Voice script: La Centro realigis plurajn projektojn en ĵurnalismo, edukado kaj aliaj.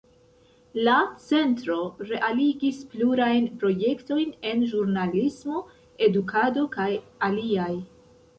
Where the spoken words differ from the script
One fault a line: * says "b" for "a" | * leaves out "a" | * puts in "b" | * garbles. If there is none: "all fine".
all fine